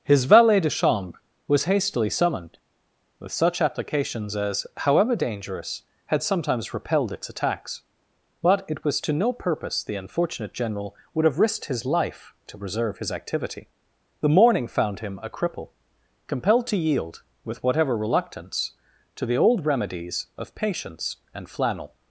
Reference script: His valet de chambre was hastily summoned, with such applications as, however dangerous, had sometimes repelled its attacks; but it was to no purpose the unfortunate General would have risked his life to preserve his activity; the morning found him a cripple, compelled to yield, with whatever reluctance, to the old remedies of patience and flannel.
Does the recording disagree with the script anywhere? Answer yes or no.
no